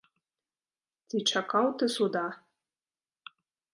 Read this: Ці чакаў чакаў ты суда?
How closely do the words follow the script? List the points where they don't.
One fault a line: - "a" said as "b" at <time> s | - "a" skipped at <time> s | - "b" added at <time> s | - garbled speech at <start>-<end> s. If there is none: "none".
- "чакаў" skipped at 1.6 s